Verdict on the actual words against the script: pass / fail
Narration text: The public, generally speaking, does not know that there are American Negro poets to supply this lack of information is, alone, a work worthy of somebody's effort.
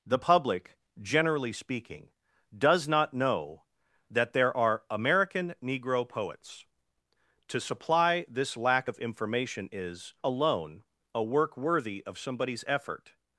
pass